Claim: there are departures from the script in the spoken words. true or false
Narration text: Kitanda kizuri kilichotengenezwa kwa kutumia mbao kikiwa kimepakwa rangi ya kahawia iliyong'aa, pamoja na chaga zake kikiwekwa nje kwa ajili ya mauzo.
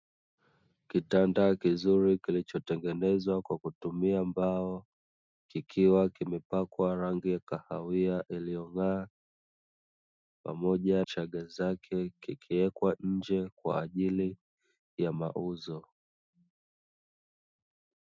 true